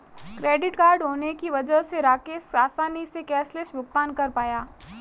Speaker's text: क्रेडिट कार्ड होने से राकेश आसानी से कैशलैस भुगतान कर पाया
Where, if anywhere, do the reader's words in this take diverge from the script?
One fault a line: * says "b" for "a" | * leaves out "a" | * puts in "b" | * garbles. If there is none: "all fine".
* puts in "की वजह"